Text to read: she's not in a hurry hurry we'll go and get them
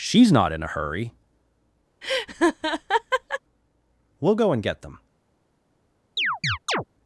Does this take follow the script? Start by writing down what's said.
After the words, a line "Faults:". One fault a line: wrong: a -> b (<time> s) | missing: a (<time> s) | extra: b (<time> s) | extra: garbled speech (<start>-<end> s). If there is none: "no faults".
she's not in a hurry we'll go and get them
Faults:
missing: hurry (1.1 s)